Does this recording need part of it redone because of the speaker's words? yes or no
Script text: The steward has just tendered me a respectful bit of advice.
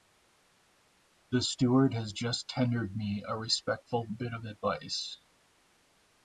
no